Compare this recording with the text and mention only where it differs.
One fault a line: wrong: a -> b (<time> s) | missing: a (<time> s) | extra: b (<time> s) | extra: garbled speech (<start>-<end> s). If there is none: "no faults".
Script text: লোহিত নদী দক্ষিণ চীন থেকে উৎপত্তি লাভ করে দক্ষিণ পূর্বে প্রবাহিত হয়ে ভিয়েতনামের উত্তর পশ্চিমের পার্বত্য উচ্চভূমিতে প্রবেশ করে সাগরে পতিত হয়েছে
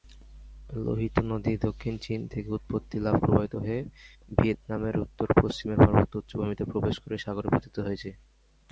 missing: করে দক্ষিণ পূর্বে (3.2 s)